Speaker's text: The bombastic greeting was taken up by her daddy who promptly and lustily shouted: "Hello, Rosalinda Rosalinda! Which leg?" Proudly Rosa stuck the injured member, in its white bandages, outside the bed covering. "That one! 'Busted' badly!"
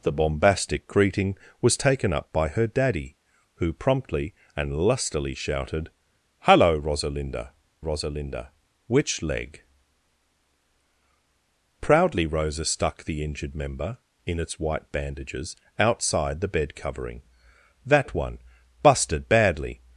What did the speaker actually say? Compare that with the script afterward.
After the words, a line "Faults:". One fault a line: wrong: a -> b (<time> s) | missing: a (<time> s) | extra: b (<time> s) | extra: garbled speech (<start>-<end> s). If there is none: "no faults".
The bombastic greeting was taken up by her daddy who promptly and lustily shouted: "Hello, Rosalinda Rosalinda! Which leg?" Proudly Rosa stuck the injured member, in its white bandages, outside the bed covering. "That one! 'Busted' badly!"
Faults:
no faults